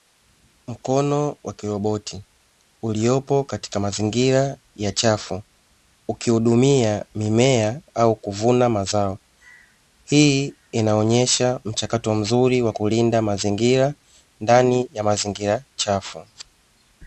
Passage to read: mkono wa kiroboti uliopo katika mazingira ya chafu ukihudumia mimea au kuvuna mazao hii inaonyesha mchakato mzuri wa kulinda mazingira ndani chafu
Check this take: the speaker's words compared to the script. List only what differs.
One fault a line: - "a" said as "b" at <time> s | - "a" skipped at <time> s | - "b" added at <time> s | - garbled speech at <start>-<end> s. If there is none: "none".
- "ya mazingira" added at 14.9 s